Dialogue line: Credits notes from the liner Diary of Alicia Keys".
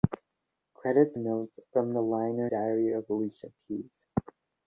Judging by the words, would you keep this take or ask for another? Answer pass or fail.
pass